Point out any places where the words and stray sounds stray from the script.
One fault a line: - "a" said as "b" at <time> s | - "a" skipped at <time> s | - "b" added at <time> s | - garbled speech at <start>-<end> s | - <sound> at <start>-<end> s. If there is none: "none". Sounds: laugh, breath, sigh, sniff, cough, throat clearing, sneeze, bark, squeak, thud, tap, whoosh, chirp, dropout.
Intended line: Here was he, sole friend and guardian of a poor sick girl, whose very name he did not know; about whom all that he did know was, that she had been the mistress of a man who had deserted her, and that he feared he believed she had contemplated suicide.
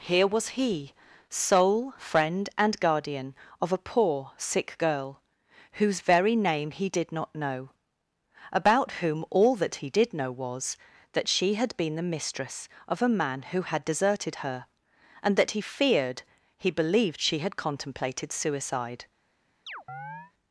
- chirp at 19.7-20.3 s